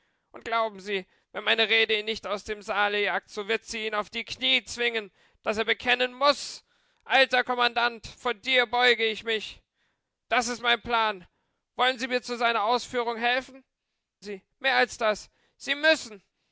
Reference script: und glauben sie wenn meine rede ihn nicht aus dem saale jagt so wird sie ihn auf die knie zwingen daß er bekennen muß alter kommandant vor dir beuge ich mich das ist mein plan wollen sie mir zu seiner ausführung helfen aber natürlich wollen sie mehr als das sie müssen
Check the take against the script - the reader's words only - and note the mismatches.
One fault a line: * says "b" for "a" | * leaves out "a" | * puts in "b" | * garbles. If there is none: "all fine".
* leaves out "aber natürlich wollen"